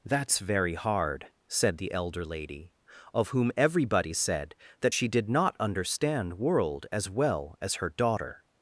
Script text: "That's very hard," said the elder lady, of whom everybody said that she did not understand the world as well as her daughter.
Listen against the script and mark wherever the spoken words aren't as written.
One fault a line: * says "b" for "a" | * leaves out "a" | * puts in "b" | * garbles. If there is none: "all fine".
* leaves out "the"